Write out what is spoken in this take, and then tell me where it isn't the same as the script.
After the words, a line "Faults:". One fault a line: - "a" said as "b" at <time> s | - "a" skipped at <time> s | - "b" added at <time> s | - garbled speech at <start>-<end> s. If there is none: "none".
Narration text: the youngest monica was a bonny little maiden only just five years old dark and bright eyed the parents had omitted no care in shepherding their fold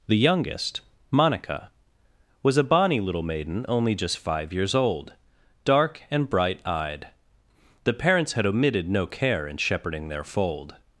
the youngest monica was a bonny little maiden only just five years old dark and bright eyed the parents had omitted no care in shepherding their fold
Faults:
none